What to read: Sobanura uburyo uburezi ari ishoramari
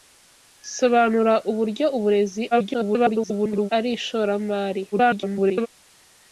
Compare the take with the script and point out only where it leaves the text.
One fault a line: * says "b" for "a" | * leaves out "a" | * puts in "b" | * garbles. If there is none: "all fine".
* garbles
* garbles